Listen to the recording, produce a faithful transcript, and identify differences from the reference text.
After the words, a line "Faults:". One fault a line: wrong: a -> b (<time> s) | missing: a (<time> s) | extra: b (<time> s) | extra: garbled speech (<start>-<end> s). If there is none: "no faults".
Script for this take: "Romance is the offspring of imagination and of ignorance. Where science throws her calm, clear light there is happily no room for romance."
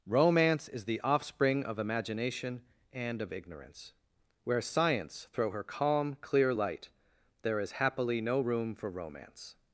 "Romance is the offspring of imagination and of ignorance. Where science throw her calm, clear light there is happily no room for romance."
Faults:
wrong: throws -> throw (5.3 s)